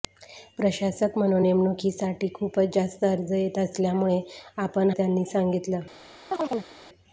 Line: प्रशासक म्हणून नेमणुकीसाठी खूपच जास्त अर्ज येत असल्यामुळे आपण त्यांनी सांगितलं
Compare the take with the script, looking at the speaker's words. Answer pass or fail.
pass